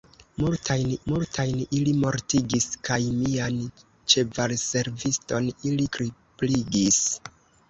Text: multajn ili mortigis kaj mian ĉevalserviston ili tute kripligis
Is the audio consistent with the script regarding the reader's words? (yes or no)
no